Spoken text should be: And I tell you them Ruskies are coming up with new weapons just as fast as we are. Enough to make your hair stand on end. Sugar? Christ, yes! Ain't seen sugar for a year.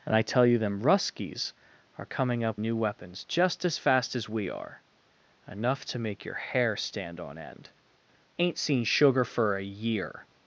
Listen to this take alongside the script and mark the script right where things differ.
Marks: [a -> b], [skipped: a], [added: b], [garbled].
And I tell you them Ruskies are coming up [skipped: with] new weapons just as fast as we are. Enough to make your hair stand on end. [skipped: Sugar? Christ, yes!] Ain't seen sugar for a year.